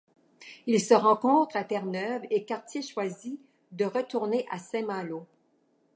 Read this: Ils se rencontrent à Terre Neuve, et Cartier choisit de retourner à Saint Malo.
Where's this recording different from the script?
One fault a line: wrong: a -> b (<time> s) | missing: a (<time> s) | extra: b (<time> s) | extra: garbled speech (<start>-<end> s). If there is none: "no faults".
no faults